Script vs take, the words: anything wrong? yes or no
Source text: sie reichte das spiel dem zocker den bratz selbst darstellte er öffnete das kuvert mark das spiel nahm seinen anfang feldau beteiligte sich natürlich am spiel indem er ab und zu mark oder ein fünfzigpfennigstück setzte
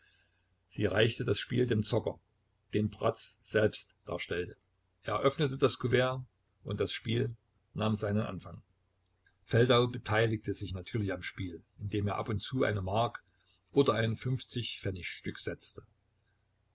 yes